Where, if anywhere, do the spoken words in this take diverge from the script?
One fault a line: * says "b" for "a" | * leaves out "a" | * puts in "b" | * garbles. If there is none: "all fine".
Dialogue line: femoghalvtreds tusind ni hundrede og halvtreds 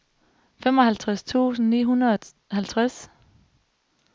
all fine